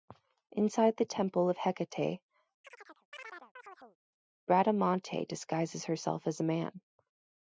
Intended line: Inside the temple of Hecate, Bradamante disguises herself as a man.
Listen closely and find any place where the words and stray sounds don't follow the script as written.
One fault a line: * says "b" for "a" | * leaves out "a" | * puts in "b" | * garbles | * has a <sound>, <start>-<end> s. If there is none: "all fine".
* has a chirp, 2.6-4.0 s